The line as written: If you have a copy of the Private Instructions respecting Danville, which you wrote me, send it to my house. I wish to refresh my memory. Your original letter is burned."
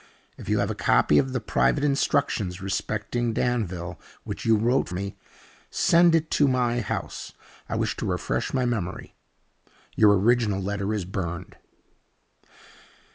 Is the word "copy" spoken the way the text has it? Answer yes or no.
yes